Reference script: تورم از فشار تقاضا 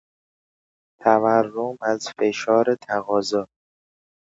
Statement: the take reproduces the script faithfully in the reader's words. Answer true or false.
true